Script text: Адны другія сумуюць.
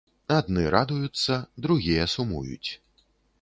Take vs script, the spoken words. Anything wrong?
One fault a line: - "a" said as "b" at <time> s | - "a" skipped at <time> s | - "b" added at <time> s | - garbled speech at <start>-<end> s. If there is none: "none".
- "радуюцца" added at 0.8 s